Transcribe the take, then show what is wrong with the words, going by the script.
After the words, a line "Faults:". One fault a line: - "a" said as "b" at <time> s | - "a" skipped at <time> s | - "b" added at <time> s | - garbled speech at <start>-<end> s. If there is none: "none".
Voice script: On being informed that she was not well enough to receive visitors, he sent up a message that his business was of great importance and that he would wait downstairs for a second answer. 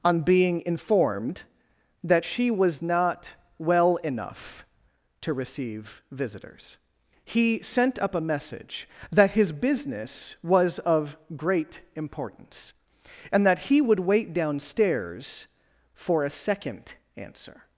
On being informed that she was not well enough to receive visitors, he sent up a message that his business was of great importance and that he would wait downstairs for a second answer.
Faults:
none